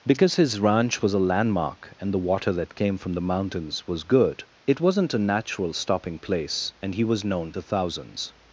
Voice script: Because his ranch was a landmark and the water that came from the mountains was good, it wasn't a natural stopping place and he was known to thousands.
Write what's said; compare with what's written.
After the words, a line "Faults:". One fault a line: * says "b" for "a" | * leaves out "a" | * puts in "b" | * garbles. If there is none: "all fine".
Because his ranch was a landmark and the water that came from the mountains was good, it wasn't a natural stopping place and he was known to thousands.
Faults:
all fine